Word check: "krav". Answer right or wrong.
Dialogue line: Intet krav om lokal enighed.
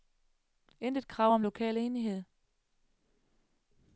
right